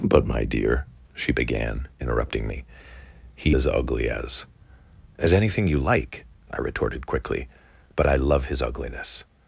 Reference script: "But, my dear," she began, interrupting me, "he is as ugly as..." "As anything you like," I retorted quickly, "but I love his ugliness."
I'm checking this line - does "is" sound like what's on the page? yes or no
no